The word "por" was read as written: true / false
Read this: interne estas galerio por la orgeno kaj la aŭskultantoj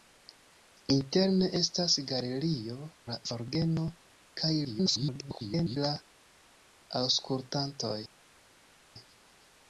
false